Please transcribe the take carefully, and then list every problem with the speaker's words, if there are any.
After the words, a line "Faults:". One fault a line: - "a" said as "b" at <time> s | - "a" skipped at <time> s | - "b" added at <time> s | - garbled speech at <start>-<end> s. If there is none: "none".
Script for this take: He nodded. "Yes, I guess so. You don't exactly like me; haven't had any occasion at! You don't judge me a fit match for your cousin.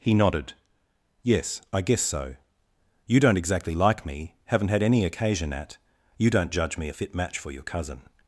He nodded. "Yes, I guess so. You don't exactly like me; haven't had any occasion at! You don't judge me a fit match for your cousin.
Faults:
none